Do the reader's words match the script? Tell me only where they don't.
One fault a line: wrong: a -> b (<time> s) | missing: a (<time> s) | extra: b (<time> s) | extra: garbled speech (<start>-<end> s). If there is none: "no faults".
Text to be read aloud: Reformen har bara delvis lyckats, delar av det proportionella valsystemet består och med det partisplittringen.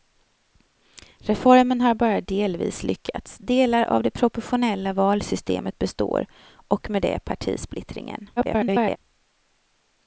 extra: garbled speech (8.4-9.0 s)